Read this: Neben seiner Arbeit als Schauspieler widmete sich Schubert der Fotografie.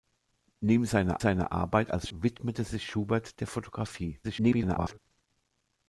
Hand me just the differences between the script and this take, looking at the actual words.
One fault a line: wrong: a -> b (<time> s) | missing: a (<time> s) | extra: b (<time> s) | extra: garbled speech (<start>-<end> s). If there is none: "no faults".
extra: seiner (1.2 s)
missing: Schauspieler (2.1 s)
extra: garbled speech (4.2-5.0 s)